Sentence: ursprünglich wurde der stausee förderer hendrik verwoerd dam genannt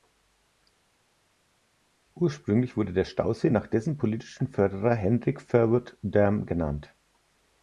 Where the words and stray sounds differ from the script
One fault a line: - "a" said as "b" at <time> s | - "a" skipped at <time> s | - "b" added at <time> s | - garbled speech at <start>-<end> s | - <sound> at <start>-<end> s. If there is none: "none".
- "nach dessen politischen" added at 3.5 s